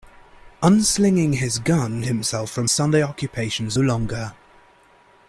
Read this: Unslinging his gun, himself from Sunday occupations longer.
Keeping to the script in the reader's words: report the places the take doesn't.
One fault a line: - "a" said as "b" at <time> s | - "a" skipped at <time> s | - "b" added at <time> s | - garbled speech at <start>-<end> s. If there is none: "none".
none